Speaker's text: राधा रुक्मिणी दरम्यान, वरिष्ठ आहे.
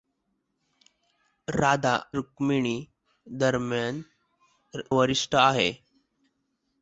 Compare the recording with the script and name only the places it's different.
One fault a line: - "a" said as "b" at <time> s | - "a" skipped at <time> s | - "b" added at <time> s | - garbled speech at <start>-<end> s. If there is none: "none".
none